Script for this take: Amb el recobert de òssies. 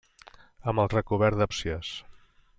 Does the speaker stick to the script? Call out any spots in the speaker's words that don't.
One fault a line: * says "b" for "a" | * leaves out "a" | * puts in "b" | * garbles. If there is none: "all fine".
all fine